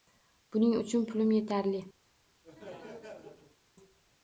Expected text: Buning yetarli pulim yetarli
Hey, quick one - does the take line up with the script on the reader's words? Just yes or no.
no